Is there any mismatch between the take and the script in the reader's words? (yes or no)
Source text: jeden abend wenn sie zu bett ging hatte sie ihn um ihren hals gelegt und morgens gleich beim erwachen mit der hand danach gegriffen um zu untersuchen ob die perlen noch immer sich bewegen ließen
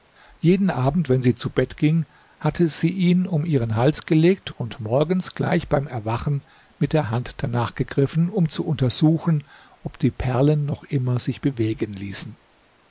no